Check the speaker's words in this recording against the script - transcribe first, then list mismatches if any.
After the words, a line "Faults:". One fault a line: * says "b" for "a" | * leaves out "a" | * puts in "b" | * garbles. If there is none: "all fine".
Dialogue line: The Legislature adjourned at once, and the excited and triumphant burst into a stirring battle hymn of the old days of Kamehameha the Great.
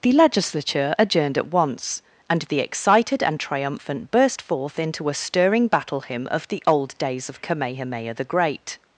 The Legislature adjourned at once, and the excited and triumphant burst forth into a stirring battle hymn of the old days of Kamehameha the Great.
Faults:
* puts in "forth"